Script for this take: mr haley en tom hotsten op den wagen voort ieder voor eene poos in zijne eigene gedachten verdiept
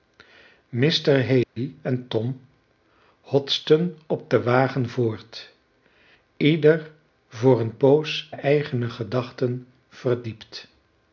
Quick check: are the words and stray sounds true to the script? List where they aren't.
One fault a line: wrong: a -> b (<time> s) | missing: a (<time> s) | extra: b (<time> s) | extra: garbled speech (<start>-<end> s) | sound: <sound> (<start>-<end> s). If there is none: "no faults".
sound: dropout (1.4-1.6 s)
missing: in zijne (8.3 s)